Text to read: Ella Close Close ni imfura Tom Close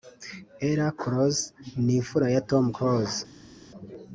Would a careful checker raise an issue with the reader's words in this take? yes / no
yes